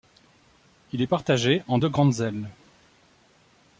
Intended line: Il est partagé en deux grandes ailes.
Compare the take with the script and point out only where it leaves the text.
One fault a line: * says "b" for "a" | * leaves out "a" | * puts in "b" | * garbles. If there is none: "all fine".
all fine